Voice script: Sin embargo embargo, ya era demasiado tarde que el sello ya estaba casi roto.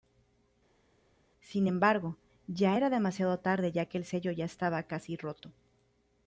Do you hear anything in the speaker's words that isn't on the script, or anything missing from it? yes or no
yes